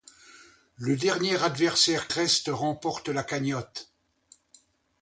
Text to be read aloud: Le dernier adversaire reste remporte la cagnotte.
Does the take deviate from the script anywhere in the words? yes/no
no